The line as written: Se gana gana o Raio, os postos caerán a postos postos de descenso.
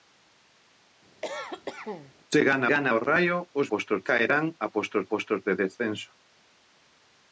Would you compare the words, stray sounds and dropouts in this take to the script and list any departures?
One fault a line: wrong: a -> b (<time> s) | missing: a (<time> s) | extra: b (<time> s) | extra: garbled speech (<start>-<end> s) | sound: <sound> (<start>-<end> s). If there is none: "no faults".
sound: cough (1.2-2.1 s)